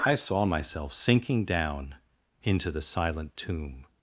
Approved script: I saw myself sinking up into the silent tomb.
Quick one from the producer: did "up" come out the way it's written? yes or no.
no